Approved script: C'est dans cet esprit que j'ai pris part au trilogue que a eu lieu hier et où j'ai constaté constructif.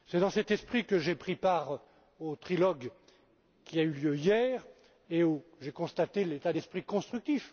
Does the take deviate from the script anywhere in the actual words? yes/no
yes